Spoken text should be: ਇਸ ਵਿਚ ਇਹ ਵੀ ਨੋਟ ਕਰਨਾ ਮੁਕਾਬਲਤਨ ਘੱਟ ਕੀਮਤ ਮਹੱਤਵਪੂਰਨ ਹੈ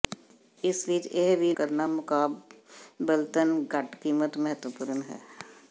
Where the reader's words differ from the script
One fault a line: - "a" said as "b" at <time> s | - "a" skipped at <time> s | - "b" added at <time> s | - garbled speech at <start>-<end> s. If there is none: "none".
- "ਨੋਟ" skipped at 1.5 s